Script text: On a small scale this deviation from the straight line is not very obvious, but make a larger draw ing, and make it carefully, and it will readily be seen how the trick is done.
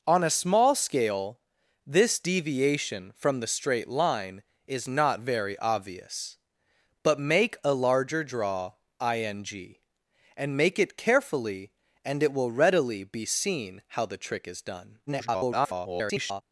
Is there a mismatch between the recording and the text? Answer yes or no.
yes